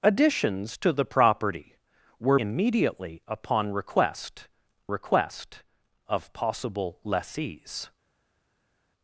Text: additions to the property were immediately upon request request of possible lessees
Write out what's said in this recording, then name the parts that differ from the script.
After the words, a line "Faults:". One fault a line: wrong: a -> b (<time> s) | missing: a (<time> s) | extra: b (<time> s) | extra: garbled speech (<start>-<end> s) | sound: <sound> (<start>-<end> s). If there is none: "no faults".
additions to the property were immediately upon request request of possible lessees
Faults:
no faults